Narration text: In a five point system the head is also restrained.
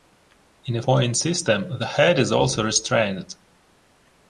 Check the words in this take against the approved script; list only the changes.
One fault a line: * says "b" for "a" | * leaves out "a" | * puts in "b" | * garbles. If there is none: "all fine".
* leaves out "five"